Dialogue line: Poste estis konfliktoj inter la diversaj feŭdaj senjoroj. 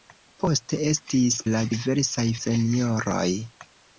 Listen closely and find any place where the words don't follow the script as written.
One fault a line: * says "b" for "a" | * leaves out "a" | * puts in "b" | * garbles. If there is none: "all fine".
* leaves out "konfliktoj inter"
* leaves out "feŭdaj"